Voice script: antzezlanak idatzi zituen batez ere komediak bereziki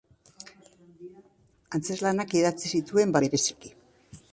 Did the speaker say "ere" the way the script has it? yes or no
no